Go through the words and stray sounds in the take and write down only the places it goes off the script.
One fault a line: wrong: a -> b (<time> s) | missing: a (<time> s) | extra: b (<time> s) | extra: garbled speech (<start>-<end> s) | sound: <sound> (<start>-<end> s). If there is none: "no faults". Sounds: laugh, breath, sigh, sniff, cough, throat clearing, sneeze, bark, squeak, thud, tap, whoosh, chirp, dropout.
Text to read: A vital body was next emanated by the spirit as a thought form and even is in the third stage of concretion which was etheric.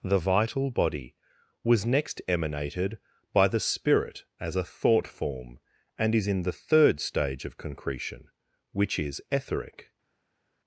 wrong: A -> The (0.0 s)
missing: even (6.2 s)
wrong: was -> is (9.0 s)